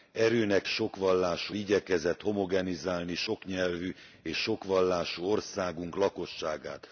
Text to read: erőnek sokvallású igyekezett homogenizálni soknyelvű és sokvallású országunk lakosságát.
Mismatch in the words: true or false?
false